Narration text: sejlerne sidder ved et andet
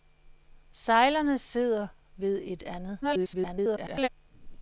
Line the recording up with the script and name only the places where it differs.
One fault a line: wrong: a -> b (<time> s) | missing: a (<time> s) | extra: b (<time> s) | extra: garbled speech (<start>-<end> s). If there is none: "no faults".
extra: garbled speech (3.0-4.1 s)